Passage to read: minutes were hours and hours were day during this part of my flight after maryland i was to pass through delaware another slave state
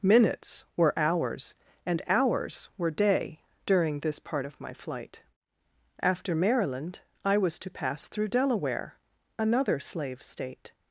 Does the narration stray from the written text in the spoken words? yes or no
no